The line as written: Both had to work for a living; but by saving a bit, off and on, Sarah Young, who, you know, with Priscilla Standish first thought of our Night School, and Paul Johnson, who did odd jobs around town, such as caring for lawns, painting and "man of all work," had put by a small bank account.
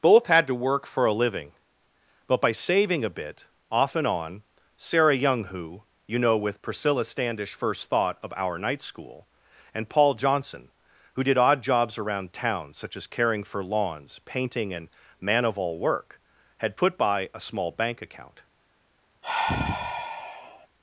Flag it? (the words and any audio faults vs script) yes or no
yes